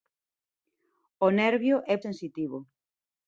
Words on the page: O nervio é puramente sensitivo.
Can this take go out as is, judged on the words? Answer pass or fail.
fail